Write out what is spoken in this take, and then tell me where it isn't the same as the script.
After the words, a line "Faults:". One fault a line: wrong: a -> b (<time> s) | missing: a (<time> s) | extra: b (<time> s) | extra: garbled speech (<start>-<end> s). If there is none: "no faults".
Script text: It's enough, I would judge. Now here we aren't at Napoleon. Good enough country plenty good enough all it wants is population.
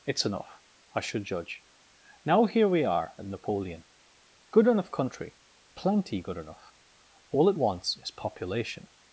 It's enough, I should judge. Now here we are at Napoleon. Good enough country plenty good enough all it wants is population.
Faults:
wrong: would -> should (1.0 s)
wrong: aren't -> are (2.8 s)